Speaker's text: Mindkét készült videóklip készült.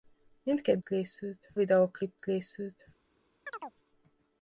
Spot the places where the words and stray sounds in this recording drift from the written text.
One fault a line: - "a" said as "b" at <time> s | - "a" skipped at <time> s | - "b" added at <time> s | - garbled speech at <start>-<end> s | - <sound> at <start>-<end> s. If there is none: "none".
- chirp at 3.5-3.8 s